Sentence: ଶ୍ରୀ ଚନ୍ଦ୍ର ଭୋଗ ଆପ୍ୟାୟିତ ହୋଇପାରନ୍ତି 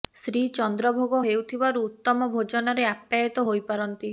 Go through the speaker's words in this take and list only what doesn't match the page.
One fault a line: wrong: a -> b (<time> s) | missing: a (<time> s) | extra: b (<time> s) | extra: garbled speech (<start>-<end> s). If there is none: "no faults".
extra: ହେଉଥିବାରୁ ଉତ୍ତମ ଭୋଜନରେ (1.2 s)